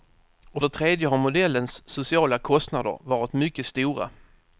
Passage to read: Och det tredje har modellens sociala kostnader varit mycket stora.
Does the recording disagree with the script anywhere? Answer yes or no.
no